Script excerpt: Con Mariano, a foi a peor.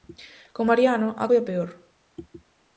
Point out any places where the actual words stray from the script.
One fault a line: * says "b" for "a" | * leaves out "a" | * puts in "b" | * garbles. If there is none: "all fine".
all fine